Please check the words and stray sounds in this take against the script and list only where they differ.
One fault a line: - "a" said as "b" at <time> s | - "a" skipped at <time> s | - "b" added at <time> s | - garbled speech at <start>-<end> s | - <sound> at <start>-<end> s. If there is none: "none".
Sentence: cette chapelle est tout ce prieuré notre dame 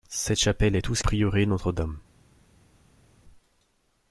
none